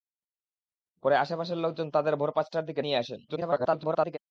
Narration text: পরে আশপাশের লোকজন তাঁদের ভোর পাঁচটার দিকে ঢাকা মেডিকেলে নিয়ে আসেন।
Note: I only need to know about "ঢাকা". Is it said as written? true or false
false